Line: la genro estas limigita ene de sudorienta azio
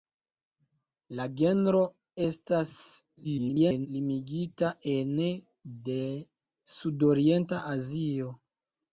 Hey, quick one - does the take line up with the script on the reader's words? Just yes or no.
no